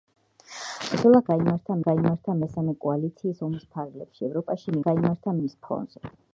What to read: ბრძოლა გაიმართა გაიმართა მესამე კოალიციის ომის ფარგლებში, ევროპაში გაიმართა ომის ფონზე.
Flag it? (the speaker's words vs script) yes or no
no